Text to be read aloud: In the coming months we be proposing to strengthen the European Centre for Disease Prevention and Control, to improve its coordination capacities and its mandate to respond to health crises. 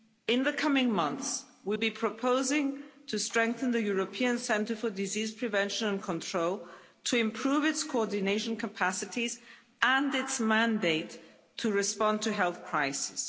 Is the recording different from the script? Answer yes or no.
no